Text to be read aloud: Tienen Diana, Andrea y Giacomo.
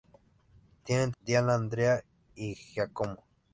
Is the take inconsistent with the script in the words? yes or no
no